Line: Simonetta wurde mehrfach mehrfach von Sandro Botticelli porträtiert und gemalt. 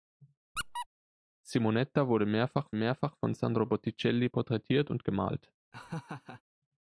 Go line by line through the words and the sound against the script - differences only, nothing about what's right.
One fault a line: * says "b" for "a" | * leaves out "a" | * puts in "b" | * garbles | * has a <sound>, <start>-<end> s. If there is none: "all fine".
* has a squeak, 0.6-0.9 s
* has a laugh, 5.7-6.4 s